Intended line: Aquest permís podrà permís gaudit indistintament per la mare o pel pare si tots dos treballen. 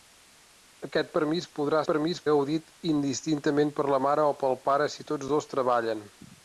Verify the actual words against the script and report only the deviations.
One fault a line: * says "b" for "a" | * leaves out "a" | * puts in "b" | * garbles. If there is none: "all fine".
all fine